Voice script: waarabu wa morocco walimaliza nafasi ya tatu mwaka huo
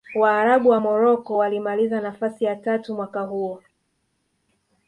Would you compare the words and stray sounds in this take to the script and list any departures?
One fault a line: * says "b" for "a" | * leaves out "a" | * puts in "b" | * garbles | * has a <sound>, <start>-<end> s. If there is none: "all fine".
all fine